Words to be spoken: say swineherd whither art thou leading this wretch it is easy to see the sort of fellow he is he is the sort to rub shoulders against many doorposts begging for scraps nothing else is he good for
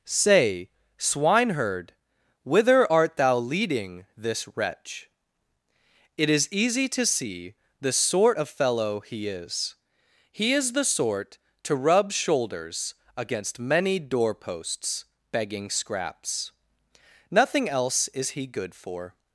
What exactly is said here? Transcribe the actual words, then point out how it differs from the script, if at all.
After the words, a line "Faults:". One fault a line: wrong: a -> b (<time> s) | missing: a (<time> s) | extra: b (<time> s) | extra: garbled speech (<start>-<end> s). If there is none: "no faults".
say swineherd whither art thou leading this wretch it is easy to see the sort of fellow he is he is the sort to rub shoulders against many doorposts begging scraps nothing else is he good for
Faults:
missing: for (15.7 s)